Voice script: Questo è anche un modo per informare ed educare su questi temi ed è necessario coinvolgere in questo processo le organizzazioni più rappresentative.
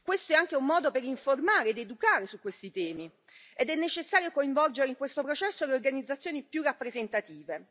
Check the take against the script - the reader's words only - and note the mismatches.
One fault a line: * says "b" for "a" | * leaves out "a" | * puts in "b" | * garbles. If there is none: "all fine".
all fine